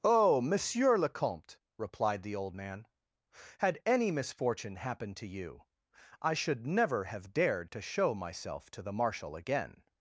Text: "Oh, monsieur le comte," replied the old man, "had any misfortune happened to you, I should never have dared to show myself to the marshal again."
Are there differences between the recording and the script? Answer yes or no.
no